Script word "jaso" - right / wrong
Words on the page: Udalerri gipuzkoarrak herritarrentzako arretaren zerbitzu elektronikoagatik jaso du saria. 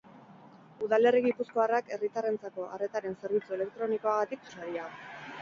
wrong